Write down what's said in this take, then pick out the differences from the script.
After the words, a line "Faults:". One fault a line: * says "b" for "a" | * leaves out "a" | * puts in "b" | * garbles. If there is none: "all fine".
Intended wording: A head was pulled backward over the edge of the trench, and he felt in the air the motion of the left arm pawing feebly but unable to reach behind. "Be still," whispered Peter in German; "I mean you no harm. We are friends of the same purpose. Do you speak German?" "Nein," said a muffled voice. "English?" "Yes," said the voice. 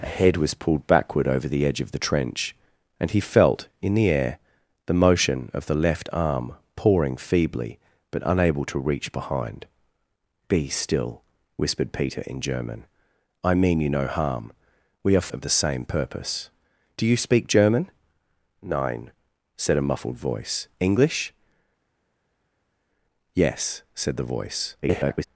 A head was pulled backward over the edge of the trench, and he felt in the air the motion of the left arm pawing feebly but unable to reach behind. "Be still," whispered Peter in German; "I mean you no harm. We are of the same purpose. Do you speak German?" "Nein," said a muffled voice. "English?" "Yes," said the voice. [garbled]
Faults:
* leaves out "friends"
* garbles